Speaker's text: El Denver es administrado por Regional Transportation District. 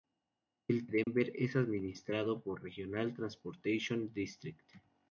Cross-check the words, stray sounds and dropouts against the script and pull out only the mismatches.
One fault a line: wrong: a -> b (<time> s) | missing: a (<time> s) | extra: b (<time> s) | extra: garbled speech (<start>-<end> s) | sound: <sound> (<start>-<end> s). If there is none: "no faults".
sound: dropout (1.0-1.1 s)